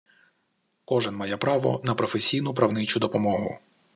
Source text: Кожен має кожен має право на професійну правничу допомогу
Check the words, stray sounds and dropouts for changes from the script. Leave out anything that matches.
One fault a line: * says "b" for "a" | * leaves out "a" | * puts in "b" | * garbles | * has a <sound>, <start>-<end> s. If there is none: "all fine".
* leaves out "кожен має"